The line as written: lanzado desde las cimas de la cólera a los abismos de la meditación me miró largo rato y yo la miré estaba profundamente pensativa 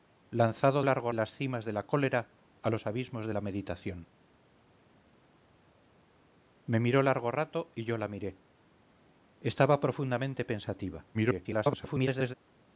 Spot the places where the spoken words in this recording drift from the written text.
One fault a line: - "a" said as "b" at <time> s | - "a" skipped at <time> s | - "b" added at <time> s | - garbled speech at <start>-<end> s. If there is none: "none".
- "desde" said as "largo" at 0.8 s
- garbled speech at 11.1-12.3 s